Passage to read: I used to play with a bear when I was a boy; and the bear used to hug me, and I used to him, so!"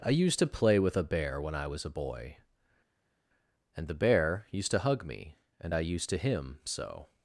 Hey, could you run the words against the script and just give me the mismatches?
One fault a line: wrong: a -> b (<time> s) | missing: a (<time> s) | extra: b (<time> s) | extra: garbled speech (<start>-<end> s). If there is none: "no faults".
no faults